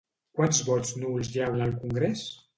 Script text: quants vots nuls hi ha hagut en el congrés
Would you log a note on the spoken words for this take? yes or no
yes